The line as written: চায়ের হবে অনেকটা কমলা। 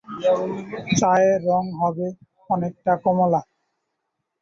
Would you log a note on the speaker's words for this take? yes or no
yes